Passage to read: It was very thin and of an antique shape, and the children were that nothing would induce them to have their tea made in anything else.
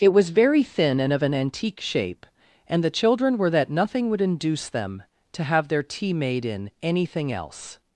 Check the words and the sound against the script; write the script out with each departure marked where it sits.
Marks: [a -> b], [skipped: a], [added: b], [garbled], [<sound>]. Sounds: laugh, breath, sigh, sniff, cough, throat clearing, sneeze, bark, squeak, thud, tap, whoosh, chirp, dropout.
It was very thin and of an antique shape, and the children were that nothing would induce them to have their tea made in anything else.